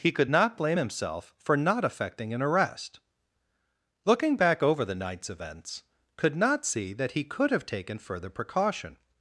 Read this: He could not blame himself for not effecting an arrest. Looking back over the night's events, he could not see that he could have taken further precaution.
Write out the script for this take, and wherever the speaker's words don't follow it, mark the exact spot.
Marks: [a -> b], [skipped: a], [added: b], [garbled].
He could not blame himself for not effecting an arrest. Looking back over the night's events, [skipped: he] could not see that he could have taken further precaution.